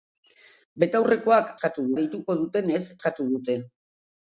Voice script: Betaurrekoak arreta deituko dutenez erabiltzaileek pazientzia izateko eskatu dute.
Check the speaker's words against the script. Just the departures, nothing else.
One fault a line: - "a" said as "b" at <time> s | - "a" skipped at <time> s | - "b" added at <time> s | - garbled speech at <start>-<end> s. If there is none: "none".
- "arreta" said as "eskatu" at 1.5 s
- "erabiltzaileek pazientzia izateko" skipped at 2.8 s